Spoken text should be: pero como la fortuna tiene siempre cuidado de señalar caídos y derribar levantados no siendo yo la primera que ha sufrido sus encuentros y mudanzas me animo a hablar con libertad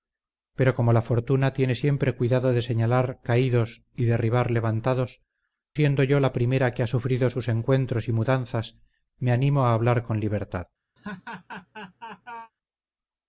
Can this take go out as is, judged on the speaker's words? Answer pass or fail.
fail